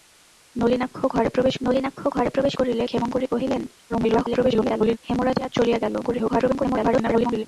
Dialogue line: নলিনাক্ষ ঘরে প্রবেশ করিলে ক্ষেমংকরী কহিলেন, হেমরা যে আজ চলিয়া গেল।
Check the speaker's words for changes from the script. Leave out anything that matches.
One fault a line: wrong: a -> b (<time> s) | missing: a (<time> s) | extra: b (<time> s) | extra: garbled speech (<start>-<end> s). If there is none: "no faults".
extra: নলিনাক্ষ ঘরে প্রবেশ (1.6 s)
extra: garbled speech (3.9-5.0 s)
extra: garbled speech (6.0-7.4 s)